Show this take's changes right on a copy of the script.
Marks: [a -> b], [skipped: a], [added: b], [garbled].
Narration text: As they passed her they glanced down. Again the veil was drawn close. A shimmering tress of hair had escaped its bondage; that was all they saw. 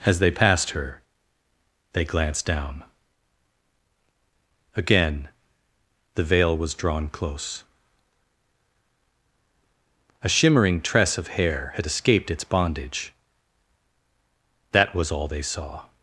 As they passed her they glanced down. Again the veil was drawn close. A shimmering tress of hair had escaped its bondage; that was all they saw.